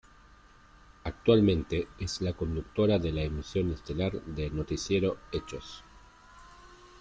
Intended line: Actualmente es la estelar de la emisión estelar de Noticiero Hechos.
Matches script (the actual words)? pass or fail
fail